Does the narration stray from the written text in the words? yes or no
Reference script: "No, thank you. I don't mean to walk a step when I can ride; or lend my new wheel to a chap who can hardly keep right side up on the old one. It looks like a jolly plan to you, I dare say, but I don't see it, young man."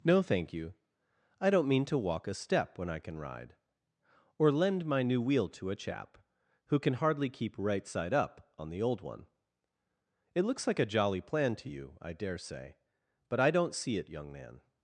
no